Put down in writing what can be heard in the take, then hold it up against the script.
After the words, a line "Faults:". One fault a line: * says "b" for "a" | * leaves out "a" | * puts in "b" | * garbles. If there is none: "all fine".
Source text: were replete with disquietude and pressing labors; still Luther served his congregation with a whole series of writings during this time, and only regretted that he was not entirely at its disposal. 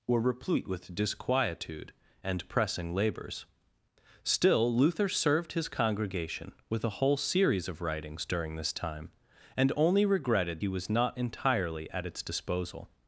were replete with disquietude and pressing labors; still Luther served his congregation with a whole series of writings during this time, and only regretted he was not entirely at its disposal.
Faults:
* leaves out "that"